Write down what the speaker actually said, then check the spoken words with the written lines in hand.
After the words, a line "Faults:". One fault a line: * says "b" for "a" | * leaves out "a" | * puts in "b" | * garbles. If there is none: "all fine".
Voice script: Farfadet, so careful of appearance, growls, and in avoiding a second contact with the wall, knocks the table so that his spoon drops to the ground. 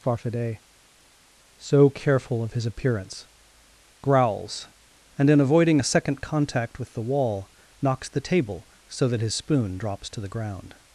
Farfadet, so careful of his appearance, growls, and in avoiding a second contact with the wall, knocks the table so that his spoon drops to the ground.
Faults:
* puts in "his"